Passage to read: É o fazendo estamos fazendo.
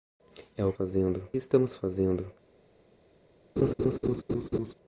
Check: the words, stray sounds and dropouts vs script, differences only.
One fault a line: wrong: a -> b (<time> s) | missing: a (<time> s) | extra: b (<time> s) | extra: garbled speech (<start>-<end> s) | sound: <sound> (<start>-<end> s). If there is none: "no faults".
sound: laugh (3.6-4.7 s)